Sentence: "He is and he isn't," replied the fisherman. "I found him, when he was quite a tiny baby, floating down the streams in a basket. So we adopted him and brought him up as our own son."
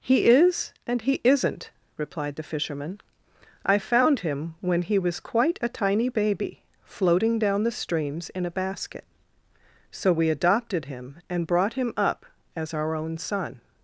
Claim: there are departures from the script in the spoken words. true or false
false